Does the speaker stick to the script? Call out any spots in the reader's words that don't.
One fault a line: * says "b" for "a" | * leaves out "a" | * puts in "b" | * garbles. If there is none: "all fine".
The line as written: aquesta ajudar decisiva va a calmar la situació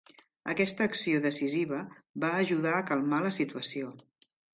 * says "acció" for "ajudar"
* puts in "ajudar"